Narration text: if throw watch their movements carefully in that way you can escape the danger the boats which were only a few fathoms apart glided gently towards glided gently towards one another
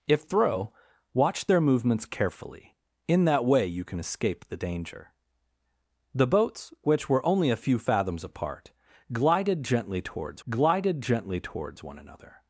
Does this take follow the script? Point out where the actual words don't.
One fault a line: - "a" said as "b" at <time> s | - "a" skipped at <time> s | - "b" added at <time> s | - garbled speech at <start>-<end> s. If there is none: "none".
none